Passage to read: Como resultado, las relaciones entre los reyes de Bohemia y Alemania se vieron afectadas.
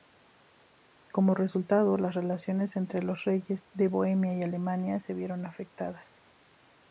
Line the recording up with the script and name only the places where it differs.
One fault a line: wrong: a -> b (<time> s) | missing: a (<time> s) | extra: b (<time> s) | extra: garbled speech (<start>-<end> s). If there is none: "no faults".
no faults